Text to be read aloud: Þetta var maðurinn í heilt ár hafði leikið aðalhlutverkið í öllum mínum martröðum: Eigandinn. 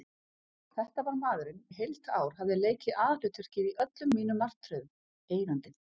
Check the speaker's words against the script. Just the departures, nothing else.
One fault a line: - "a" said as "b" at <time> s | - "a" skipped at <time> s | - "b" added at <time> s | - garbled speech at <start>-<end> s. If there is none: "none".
none